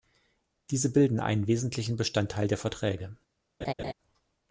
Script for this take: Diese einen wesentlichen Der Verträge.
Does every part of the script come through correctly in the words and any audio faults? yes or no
no